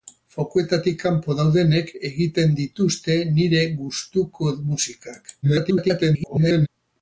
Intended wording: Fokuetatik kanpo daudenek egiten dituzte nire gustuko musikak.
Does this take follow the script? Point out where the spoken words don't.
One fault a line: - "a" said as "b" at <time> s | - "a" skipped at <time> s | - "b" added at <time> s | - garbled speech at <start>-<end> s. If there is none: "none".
- garbled speech at 5.4-6.7 s